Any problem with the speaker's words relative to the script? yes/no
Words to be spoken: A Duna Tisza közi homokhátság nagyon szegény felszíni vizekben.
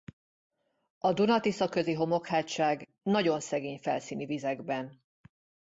no